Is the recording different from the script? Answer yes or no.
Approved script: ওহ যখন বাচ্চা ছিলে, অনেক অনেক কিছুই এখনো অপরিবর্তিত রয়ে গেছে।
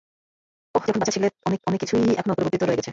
no